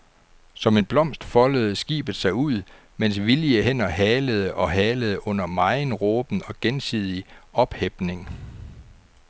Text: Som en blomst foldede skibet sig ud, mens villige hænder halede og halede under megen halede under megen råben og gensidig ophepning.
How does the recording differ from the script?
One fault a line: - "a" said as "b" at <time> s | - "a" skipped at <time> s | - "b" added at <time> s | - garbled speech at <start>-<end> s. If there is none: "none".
- "halede under megen" skipped at 5.9 s